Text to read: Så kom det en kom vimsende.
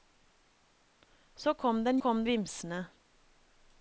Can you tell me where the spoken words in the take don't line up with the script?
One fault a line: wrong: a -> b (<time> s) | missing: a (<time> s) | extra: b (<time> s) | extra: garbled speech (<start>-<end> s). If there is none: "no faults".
no faults